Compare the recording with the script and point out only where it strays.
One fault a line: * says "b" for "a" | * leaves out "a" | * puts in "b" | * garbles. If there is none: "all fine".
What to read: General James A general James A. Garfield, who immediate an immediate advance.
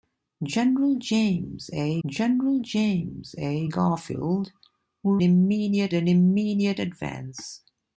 all fine